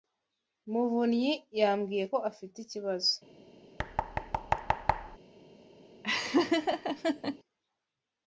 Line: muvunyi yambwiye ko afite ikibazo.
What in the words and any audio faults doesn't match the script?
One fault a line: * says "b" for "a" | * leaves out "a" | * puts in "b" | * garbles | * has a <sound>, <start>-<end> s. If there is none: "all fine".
* has a thud, 3.8-5.2 s
* has a laugh, 6.0-7.4 s